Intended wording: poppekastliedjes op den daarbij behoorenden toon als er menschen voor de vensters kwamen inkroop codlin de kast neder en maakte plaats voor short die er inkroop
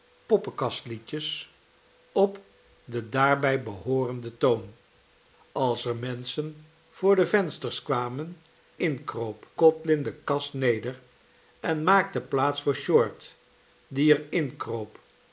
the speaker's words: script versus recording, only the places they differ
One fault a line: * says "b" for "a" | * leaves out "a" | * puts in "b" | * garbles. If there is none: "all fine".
all fine